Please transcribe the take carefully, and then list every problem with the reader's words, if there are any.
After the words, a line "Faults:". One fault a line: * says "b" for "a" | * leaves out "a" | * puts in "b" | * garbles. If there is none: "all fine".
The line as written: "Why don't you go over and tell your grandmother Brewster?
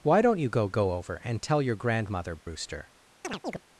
"Why don't you go go over and tell your grandmother Brewster?
Faults:
* puts in "go"